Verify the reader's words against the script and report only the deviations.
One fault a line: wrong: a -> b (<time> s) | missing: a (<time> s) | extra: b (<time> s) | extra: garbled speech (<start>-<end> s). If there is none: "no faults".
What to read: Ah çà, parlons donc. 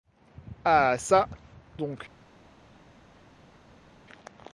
missing: parlons (1.3 s)